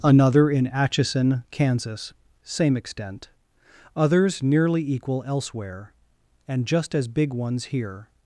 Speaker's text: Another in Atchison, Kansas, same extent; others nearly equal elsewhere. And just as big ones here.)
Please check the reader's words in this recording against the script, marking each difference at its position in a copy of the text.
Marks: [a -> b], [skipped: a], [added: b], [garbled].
Another in Atchison, Kansas, same extent; others nearly equal elsewhere. And just as big ones here.)